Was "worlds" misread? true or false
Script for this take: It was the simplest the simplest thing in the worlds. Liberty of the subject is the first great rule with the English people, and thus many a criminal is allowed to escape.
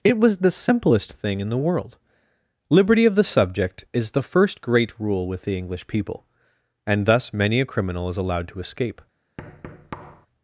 true